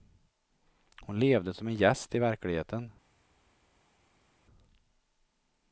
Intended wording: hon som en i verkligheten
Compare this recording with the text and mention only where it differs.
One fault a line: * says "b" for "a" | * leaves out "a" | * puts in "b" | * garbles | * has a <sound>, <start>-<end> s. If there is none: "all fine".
* puts in "levde"
* puts in "gäst"